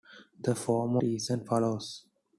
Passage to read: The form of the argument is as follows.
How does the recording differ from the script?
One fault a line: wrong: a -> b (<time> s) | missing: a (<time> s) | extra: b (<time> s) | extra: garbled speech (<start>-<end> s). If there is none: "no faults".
missing: of the argument (1.0 s)